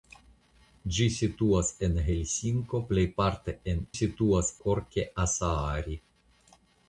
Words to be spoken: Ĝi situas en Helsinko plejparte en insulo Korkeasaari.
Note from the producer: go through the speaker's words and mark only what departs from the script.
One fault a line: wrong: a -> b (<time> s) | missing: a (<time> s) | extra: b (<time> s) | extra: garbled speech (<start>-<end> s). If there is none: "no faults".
wrong: insulo -> situas (4.0 s)